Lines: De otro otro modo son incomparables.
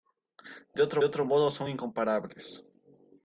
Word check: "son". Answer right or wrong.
right